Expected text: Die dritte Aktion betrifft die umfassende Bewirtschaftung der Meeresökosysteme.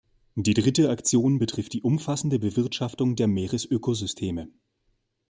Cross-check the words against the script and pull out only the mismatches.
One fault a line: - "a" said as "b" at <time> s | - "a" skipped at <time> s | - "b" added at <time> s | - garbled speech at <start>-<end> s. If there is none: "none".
none